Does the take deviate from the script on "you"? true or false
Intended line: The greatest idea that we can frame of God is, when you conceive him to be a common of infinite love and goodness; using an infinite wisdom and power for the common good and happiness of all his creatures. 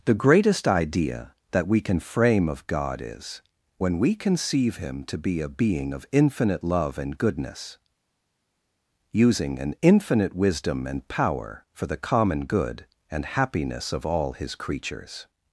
true